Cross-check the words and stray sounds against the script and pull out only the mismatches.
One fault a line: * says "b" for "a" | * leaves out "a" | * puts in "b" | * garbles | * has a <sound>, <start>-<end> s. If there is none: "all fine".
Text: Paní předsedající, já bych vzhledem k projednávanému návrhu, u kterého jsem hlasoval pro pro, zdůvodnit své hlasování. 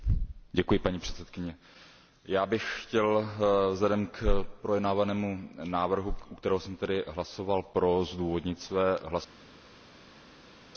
* puts in "chtěl"
* leaves out "pro"